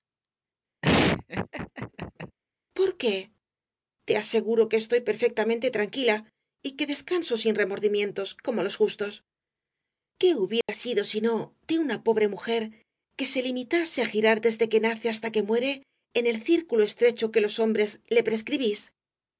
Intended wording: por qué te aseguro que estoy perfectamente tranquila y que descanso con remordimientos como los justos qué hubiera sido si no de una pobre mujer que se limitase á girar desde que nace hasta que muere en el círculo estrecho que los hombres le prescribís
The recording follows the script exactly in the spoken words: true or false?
false